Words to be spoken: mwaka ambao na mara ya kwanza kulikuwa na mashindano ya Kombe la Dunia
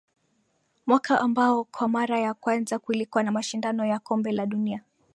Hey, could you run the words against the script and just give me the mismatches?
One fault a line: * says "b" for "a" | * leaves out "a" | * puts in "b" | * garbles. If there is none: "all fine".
* says "kwa" for "na"